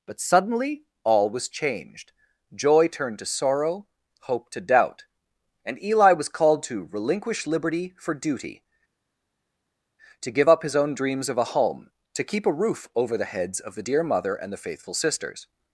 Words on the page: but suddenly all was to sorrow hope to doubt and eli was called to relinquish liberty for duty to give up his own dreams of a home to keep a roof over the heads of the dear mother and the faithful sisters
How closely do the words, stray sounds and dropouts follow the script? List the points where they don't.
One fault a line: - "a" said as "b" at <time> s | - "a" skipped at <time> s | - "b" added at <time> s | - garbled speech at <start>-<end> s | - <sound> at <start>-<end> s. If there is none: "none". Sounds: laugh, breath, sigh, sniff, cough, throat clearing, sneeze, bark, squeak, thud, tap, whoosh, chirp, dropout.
- "changed joy turned" added at 1.5 s